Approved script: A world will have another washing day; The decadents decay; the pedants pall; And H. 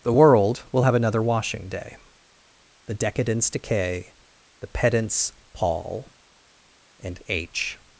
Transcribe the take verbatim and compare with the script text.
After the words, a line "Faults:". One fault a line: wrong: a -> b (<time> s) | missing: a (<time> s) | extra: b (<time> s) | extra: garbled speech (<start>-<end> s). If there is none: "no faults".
The world will have another washing day; The decadents decay; the pedants pall; And H.
Faults:
wrong: A -> The (0.0 s)